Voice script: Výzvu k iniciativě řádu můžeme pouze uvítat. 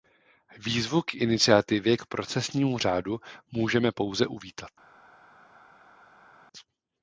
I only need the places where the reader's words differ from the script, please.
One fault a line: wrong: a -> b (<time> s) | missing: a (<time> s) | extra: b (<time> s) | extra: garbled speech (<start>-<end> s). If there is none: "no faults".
extra: k procesnímu (1.9 s)